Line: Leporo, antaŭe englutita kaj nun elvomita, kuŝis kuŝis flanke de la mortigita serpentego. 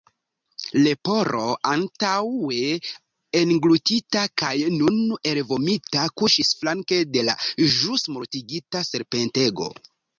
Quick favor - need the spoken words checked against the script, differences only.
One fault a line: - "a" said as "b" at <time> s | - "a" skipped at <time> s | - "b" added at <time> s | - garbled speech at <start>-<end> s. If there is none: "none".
- "kuŝis" skipped at 6.5 s
- "ĵus" added at 7.8 s